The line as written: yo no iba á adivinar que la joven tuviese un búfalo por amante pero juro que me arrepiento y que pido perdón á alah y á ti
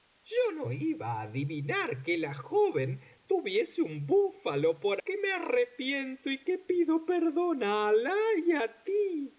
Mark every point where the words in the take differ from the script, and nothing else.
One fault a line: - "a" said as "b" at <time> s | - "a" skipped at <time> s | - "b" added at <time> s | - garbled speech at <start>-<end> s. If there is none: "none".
- "amante pero juro" skipped at 5.0 s